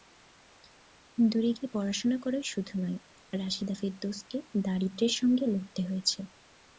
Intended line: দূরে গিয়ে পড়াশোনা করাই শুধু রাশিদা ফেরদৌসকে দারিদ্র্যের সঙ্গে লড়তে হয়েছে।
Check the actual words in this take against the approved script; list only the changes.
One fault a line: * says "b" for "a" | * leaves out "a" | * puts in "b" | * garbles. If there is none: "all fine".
* puts in "নয়"